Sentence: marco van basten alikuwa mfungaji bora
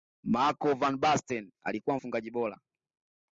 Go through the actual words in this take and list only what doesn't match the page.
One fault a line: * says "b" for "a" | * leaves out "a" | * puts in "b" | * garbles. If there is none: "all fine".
all fine